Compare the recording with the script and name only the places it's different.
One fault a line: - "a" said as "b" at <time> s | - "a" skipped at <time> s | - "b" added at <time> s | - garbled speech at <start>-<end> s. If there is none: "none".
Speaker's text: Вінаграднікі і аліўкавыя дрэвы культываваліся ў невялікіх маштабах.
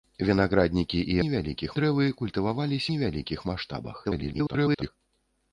- "аліўкавыя" said as "невялікіх" at 1.3 s
- "ў" skipped at 2.9 s
- garbled speech at 4.0-4.9 s